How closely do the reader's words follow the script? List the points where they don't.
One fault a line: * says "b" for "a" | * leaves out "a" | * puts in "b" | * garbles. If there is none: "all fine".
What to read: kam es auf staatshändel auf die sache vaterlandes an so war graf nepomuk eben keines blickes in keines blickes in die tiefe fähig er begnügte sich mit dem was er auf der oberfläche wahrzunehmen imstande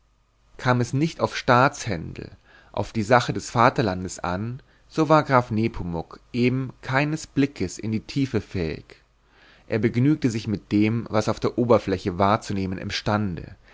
* puts in "nicht"
* puts in "des"
* leaves out "keines blickes in"